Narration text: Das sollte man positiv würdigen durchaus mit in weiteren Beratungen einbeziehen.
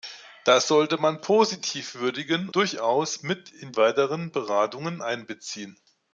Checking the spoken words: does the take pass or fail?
pass